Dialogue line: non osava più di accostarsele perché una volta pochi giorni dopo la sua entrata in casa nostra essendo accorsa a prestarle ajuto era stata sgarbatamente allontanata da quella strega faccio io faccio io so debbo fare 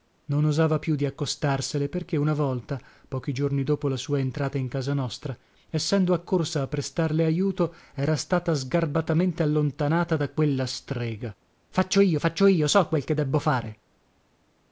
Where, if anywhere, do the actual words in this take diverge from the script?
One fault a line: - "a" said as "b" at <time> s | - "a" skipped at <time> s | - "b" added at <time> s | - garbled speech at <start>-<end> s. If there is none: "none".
- "quel che" added at 12.9 s